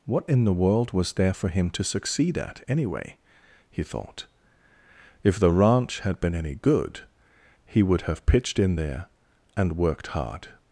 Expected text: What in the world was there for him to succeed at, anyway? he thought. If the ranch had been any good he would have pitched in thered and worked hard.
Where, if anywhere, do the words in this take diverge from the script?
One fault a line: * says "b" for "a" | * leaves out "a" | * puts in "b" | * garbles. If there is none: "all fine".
* says "there" for "thered"